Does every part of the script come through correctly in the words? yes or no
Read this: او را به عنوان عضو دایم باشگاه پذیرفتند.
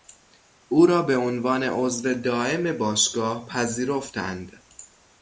yes